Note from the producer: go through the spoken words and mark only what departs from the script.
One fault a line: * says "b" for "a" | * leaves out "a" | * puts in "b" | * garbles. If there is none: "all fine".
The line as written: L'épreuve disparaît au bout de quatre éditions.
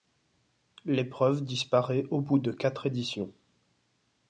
all fine